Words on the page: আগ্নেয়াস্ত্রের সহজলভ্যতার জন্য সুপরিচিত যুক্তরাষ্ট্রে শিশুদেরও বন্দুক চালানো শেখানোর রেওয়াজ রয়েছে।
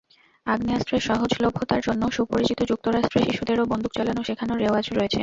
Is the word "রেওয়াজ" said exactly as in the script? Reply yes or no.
yes